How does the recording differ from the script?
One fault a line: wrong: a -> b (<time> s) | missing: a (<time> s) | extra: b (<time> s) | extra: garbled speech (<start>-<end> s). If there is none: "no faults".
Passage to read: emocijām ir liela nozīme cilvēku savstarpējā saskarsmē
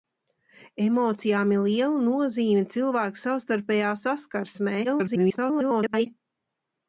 extra: garbled speech (4.8-6.1 s)